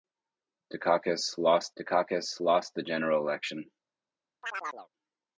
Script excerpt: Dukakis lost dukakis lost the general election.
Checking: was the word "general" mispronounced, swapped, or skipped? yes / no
no